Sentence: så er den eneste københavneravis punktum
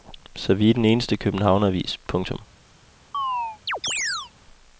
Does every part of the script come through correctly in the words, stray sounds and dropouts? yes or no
no